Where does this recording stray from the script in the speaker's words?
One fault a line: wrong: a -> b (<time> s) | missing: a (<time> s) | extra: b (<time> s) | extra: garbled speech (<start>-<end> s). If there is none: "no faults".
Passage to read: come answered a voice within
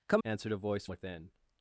no faults